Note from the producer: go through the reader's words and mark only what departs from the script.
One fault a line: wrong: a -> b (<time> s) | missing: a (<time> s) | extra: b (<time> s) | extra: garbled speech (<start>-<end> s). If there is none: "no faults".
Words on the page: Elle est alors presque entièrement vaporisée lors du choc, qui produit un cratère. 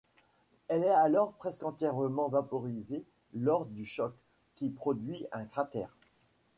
no faults